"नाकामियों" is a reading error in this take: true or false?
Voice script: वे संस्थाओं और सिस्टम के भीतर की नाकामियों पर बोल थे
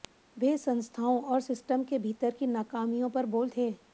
false